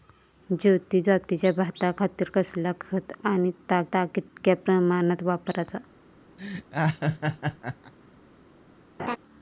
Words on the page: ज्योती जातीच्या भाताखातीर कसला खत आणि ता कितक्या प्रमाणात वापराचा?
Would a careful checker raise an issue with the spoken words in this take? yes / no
yes